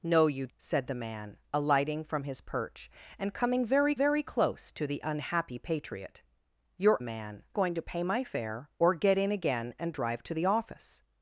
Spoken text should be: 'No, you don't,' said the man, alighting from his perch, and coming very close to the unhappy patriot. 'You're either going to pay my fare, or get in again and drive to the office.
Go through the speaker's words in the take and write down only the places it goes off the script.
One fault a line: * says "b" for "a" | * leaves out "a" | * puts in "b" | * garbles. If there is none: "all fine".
* leaves out "don't"
* puts in "very"
* says "man" for "either"